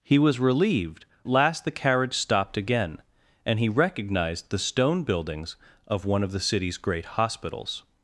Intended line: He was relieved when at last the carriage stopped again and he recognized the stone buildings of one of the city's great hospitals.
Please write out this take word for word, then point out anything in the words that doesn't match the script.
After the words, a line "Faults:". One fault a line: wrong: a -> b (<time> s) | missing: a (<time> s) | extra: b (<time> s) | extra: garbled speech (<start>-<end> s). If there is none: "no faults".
He was relieved last the carriage stopped again and he recognized the stone buildings of one of the city's great hospitals.
Faults:
missing: when at (1.1 s)